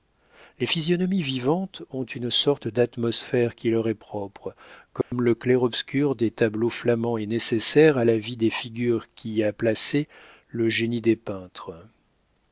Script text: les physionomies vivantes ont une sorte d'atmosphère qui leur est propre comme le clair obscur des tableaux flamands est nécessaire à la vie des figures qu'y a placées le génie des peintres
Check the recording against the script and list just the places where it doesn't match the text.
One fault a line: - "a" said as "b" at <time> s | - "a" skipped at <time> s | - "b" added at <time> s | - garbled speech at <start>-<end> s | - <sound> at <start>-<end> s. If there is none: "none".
- dropout at 5.0-5.1 s